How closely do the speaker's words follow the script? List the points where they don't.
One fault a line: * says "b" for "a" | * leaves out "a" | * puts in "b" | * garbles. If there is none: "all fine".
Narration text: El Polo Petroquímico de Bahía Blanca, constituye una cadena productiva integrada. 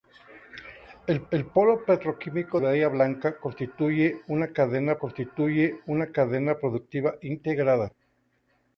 * puts in "el"
* leaves out "de"
* puts in "constituye una cadena"